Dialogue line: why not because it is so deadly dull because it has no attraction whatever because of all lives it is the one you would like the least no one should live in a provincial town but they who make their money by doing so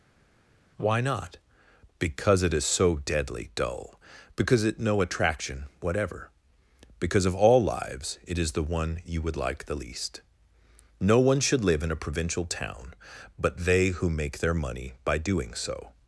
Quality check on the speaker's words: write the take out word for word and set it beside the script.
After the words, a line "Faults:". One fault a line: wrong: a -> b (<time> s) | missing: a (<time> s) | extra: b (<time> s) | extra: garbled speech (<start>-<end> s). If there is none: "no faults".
why not because it is so deadly dull because it no attraction whatever because of all lives it is the one you would like the least no one should live in a provincial town but they who make their money by doing so
Faults:
missing: has (4.8 s)